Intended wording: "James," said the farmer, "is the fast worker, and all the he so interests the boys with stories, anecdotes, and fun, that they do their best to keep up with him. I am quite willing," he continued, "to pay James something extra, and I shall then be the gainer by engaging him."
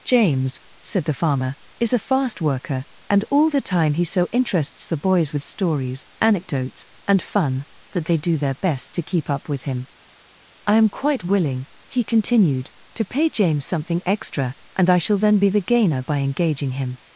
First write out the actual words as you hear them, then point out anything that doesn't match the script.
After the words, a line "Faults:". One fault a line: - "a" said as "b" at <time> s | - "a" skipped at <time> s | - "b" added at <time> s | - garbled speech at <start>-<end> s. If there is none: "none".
"James," said the farmer, "is a fast worker, and all the time he so interests the boys with stories, anecdotes, and fun, that they do their best to keep up with him. I am quite willing," he continued, "to pay James something extra, and I shall then be the gainer by engaging him."
Faults:
- "the" said as "a" at 1.9 s
- "time" added at 3.6 s